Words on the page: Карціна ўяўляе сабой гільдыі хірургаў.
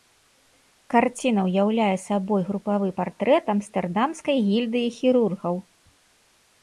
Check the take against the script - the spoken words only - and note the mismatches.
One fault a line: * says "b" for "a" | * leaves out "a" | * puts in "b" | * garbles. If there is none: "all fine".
* puts in "групавы партрэт амстэрдамскай"